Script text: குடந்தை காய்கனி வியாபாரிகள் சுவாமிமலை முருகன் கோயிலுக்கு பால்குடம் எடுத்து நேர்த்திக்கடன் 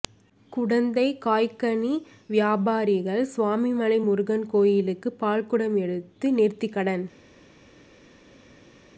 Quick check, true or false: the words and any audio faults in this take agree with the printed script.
true